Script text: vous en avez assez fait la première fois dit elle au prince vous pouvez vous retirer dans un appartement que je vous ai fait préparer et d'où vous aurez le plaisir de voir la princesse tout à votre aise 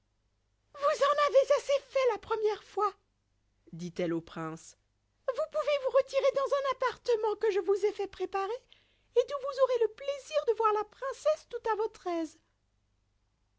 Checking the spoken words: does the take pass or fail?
pass